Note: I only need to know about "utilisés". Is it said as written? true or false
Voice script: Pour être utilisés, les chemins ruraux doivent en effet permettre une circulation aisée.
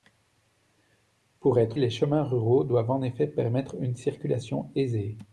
false